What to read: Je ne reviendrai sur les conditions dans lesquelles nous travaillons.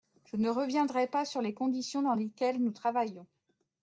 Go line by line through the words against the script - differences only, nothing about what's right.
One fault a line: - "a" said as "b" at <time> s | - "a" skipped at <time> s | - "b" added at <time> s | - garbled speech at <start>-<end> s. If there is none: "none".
- "pas" added at 1.1 s